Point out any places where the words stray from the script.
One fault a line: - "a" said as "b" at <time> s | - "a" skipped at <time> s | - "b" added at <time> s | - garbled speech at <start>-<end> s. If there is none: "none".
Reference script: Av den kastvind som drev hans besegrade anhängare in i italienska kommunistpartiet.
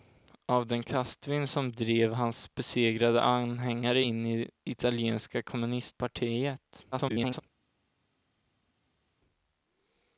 - garbled speech at 6.9-7.4 s